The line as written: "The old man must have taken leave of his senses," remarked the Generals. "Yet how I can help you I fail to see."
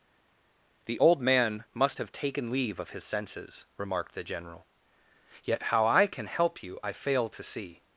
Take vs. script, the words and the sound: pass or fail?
fail